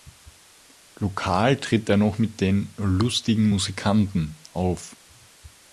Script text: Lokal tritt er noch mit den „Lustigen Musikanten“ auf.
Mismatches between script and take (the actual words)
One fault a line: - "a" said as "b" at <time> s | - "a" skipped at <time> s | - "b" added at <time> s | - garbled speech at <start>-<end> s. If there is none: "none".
none